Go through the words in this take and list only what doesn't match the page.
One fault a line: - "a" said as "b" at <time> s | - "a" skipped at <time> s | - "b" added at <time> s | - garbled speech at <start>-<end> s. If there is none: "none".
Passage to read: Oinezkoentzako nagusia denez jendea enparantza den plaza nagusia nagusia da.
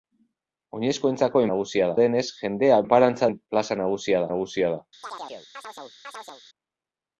none